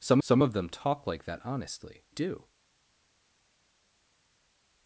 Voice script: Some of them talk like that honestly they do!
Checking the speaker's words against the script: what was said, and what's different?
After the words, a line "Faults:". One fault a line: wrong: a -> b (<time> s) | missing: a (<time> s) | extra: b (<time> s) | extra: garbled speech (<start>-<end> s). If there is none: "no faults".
Some some of them talk like that honestly do!
Faults:
extra: some (0.2 s)
missing: they (2.0 s)